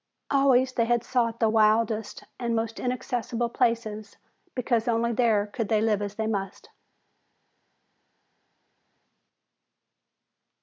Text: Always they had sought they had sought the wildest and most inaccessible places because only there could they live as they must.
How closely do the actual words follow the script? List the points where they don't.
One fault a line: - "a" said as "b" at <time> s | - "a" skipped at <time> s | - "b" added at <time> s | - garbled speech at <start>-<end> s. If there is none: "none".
- "they had sought" skipped at 1.4 s